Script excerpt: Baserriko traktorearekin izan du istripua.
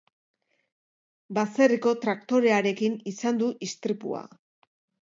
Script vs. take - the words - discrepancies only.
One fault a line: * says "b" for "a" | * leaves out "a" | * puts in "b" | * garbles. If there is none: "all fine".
all fine